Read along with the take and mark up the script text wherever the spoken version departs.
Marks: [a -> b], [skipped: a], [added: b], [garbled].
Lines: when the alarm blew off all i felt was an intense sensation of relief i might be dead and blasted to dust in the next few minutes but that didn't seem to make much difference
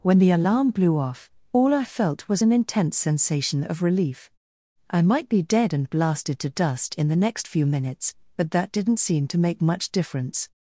when the alarm blew off all i felt was an intense sensation of relief i might be dead and blasted to dust in the next few minutes but that didn't seem to make much difference